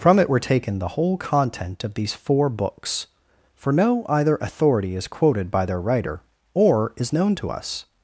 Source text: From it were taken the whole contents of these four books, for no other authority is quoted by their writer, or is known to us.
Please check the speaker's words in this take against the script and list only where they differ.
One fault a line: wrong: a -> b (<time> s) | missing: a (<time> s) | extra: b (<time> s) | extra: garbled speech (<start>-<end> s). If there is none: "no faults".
wrong: contents -> content (1.1 s)
wrong: other -> either (4.1 s)